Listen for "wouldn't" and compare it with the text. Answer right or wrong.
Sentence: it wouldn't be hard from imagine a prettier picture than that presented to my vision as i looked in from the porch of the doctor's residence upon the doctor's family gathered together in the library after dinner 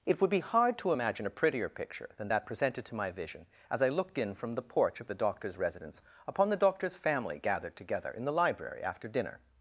wrong